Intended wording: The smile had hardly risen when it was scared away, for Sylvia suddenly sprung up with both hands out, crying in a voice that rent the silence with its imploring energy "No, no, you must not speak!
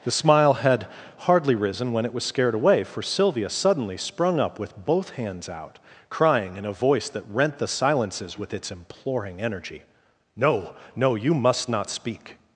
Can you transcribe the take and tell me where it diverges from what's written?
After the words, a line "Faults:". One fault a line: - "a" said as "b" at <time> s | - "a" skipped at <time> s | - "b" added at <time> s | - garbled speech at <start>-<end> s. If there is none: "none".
The smile had hardly risen when it was scared away, for Sylvia suddenly sprung up with both hands out, crying in a voice that rent the silences with its imploring energy "No, no, you must not speak!
Faults:
- "silence" said as "silences" at 7.7 s